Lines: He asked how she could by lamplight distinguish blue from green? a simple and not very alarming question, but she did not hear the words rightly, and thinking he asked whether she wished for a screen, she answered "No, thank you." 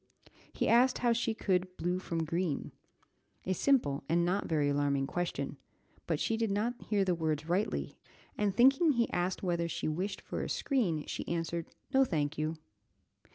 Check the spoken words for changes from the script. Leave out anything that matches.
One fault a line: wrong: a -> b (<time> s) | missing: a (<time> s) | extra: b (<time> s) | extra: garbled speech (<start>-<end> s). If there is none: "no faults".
missing: by lamplight distinguish (1.7 s)